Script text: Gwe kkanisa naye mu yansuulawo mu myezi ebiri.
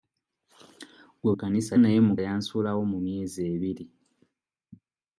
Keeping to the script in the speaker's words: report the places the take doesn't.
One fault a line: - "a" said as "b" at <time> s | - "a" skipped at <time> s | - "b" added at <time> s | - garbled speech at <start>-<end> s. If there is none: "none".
none